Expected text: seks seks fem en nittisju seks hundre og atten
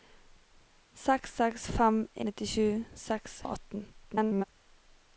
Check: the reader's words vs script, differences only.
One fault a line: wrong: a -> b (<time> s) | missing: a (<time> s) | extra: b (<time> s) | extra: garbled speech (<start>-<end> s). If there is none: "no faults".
missing: en (2.0 s)
missing: hundre (3.4 s)
extra: garbled speech (3.9-4.4 s)